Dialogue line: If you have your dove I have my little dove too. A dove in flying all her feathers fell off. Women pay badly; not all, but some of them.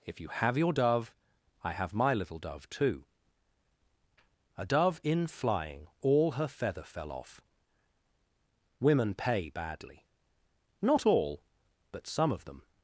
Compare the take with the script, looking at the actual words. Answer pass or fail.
fail